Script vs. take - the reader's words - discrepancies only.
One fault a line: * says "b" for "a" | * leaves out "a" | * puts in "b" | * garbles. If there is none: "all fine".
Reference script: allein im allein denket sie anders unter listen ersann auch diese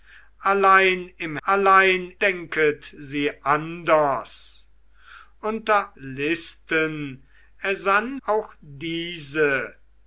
all fine